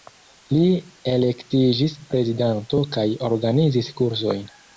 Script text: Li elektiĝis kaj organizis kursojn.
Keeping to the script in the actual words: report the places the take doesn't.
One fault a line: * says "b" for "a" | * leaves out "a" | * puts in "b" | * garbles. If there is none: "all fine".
* puts in "prezidanto"